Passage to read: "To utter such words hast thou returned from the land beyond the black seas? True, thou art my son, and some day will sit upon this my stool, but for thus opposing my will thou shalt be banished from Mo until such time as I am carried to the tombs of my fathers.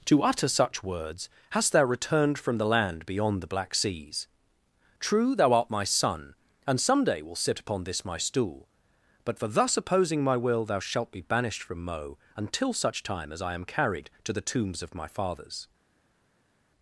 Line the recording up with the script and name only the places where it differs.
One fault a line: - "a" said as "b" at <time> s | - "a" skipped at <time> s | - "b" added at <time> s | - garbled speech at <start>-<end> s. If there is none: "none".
none